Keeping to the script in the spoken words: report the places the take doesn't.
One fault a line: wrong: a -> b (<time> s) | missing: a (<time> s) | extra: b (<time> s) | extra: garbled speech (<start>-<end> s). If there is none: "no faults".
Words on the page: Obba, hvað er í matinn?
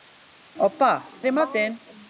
missing: hvað (0.9 s)